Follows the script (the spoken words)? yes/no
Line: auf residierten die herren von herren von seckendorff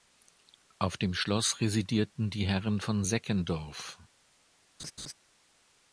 no